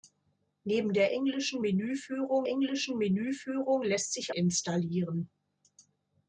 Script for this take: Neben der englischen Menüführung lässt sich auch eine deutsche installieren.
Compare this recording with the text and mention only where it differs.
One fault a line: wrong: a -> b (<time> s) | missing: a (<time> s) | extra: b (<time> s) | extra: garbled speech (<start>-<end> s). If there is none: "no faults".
extra: englischen Menüführung (2.5 s)
missing: auch eine deutsche (4.3 s)